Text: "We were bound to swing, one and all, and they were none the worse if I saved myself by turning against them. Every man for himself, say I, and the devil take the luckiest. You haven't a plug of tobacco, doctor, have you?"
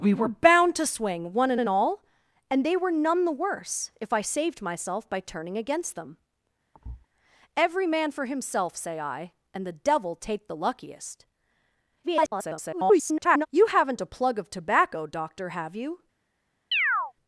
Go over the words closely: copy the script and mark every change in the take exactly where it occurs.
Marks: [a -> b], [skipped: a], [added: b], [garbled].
"We were bound to swing, one and [added: and] all, and they were none the worse if I saved myself by turning against them. Every man for himself, say I, and the devil take the luckiest. [garbled] You haven't a plug of tobacco, doctor, have you?"